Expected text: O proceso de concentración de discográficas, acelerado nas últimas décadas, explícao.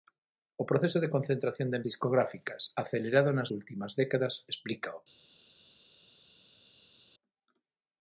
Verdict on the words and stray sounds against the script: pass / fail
pass